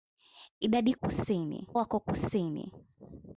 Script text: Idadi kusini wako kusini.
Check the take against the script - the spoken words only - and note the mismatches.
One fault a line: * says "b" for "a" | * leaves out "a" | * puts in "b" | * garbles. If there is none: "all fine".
all fine